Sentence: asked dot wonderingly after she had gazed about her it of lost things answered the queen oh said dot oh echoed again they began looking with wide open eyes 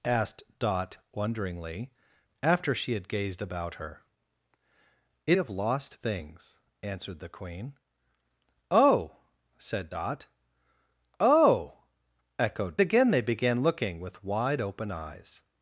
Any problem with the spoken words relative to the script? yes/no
no